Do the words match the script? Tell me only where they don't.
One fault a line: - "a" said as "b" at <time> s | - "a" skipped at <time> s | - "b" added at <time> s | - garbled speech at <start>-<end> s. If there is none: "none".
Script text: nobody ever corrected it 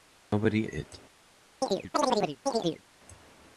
- "ever corrected" skipped at 0.7 s